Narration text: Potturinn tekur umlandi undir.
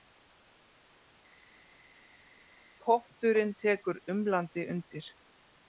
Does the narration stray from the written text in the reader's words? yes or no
no